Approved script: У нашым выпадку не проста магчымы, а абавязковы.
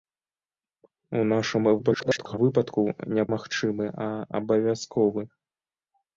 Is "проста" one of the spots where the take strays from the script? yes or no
yes